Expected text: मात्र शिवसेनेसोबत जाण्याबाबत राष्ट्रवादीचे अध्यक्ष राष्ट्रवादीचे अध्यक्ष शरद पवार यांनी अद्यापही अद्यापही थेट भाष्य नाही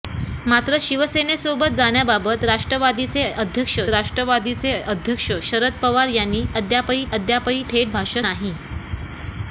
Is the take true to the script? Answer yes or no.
yes